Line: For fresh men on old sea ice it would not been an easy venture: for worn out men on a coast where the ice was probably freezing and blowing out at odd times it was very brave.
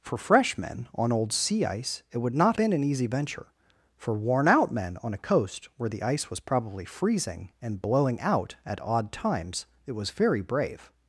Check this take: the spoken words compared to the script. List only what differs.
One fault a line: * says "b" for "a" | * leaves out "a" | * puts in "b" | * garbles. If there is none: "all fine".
all fine